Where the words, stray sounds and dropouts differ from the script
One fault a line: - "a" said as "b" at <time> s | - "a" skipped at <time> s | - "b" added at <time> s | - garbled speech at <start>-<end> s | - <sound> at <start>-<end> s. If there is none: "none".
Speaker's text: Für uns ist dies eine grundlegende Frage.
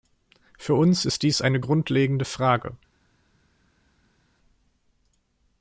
none